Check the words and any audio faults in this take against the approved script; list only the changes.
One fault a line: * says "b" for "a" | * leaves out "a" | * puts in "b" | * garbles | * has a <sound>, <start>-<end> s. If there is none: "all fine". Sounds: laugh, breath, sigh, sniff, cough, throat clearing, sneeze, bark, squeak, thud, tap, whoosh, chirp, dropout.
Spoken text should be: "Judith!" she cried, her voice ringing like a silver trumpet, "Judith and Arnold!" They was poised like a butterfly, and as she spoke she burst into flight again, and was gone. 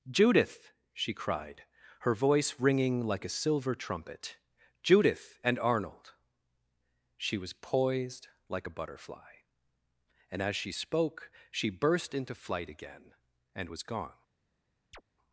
* says "She" for "They"
* has a chirp, 14.9-15.0 s